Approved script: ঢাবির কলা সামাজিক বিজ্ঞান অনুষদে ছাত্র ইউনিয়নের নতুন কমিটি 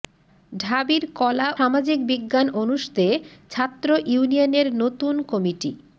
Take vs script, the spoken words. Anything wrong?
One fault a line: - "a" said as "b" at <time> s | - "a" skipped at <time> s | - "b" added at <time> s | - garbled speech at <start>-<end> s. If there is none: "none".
none